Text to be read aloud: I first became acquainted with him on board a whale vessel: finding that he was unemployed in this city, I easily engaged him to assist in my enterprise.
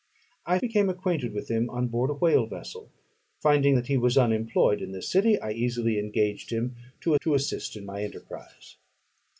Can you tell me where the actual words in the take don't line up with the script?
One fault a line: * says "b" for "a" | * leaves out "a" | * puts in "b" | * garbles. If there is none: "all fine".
* leaves out "first"
* puts in "to"